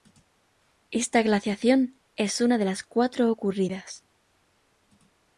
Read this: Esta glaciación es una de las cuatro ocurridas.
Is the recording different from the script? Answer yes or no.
no